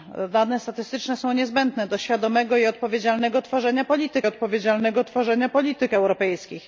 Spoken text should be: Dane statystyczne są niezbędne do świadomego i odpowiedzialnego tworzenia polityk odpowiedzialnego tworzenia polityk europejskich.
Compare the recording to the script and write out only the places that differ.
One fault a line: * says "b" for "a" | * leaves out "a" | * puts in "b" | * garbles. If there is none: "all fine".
all fine